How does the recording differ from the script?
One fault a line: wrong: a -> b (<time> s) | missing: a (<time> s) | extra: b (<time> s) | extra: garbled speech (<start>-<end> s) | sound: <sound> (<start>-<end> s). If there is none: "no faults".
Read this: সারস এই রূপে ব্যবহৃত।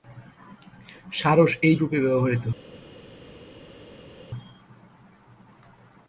no faults